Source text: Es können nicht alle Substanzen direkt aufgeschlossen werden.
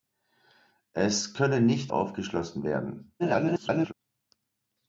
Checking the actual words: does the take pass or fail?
fail